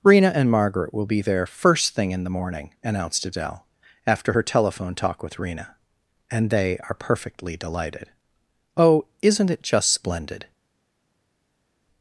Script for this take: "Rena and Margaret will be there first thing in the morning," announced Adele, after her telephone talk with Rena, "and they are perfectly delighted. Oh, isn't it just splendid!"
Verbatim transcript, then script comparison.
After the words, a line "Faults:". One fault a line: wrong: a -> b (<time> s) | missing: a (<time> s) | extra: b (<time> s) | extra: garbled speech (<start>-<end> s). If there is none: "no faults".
"Rena and Margaret will be there first thing in the morning," announced Adele, after her telephone talk with Rena, "and they are perfectly delighted. Oh, isn't it just splendid!"
Faults:
no faults